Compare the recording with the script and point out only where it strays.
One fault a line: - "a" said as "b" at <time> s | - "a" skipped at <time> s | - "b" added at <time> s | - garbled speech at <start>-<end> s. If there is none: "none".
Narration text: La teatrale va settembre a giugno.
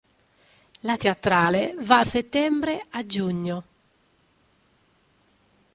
none